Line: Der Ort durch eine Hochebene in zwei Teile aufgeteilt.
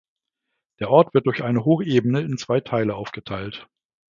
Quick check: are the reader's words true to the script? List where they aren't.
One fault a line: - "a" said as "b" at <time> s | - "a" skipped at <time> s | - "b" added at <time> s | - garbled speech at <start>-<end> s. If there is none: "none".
- "wird" added at 1.1 s